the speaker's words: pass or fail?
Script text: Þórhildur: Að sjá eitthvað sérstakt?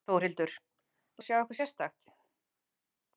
pass